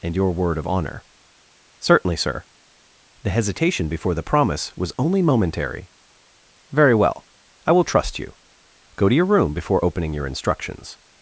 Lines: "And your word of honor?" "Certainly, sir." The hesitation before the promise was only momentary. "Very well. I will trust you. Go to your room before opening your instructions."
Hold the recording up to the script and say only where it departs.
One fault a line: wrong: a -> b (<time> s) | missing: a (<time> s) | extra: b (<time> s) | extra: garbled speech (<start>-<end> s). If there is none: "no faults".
no faults